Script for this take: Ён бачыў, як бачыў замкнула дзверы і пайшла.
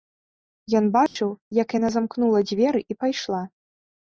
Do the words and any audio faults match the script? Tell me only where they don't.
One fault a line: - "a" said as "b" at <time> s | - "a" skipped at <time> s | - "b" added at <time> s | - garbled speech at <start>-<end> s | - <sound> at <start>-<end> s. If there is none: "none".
- dropout at 1.1-1.2 s
- "бачыў" said as "яна" at 1.8 s